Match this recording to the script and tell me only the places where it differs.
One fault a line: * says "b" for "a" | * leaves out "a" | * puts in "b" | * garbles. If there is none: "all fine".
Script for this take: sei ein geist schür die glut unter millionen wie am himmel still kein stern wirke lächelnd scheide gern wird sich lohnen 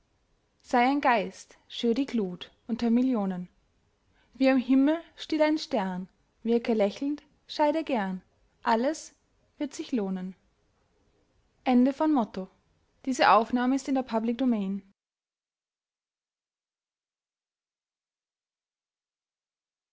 * says "ein" for "kein"
* puts in "alles"